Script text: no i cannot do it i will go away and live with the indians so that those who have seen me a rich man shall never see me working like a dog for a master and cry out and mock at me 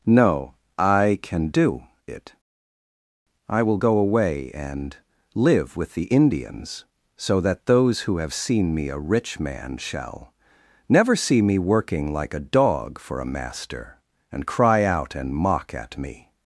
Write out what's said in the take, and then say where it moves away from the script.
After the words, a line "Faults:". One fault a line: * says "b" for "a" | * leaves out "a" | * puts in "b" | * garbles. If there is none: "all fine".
no i can do it i will go away and live with the indians so that those who have seen me a rich man shall never see me working like a dog for a master and cry out and mock at me
Faults:
* says "can" for "cannot"